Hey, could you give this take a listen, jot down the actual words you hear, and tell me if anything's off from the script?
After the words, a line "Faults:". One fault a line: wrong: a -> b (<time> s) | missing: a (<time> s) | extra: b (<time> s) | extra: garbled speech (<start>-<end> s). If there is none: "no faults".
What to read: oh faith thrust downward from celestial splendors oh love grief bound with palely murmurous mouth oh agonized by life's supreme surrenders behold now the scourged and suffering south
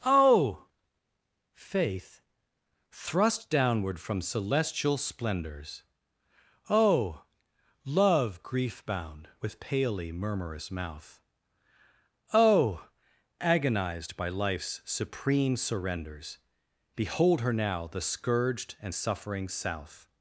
oh faith thrust downward from celestial splendors oh love grief bound with palely murmurous mouth oh agonized by life's supreme surrenders behold her now the scourged and suffering south
Faults:
extra: her (17.4 s)